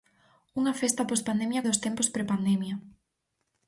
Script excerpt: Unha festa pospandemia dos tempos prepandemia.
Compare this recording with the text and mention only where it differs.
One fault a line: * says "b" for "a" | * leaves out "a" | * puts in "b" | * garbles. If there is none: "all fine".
all fine